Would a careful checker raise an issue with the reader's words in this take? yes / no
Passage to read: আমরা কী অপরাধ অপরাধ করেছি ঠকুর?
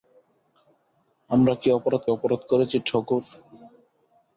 no